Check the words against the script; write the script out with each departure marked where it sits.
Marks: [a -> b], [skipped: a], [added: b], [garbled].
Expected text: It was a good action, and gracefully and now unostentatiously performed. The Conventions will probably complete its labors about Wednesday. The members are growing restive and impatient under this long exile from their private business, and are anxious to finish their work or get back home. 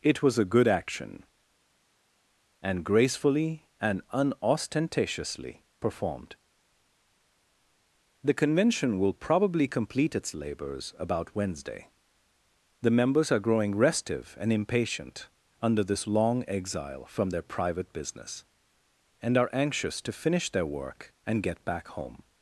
It was a good action, and gracefully and [skipped: now] unostentatiously performed. The [Conventions -> Convention] will probably complete its labors about Wednesday. The members are growing restive and impatient under this long exile from their private business, and are anxious to finish their work [or -> and] get back home.